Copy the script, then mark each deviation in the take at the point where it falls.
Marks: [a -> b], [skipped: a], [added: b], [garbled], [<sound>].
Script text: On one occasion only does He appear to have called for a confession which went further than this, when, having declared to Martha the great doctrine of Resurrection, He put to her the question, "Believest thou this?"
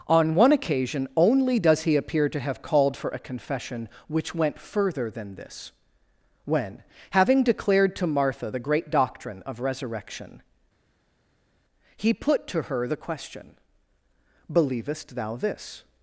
On one occasion only does He appear to have called for a confession which went further than this, when, having declared to Martha the great doctrine of Resurrection, He put to her the question, "Believest thou this?"